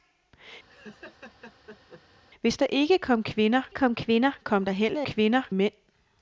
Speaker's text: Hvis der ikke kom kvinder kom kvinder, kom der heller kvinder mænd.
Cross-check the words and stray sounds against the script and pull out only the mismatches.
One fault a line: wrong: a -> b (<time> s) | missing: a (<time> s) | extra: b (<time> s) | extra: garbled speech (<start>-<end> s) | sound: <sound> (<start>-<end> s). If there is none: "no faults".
sound: laugh (0.7-2.0 s)